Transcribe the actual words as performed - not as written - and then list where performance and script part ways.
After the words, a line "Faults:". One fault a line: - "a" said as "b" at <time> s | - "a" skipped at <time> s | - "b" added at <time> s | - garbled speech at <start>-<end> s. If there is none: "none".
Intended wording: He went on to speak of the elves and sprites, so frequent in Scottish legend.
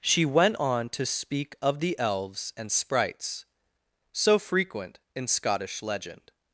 She went on to speak of the elves and sprites, so frequent in Scottish legend.
Faults:
- "He" said as "She" at 0.0 s